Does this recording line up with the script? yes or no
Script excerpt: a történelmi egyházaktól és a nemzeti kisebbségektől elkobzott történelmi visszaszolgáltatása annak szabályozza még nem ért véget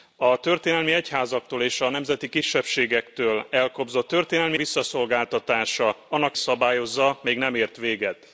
yes